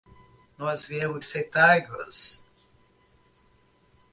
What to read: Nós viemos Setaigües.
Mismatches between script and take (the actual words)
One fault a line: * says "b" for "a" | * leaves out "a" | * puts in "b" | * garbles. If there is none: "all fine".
all fine